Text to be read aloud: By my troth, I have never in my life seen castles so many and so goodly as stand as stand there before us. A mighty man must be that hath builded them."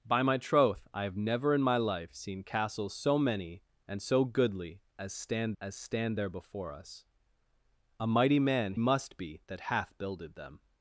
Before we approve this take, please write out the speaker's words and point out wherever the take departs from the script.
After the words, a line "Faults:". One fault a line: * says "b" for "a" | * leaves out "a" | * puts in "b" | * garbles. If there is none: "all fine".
By my troth, I have never in my life seen castles so many and so goodly as stand as stand there before us. A mighty man must be that hath builded them."
Faults:
all fine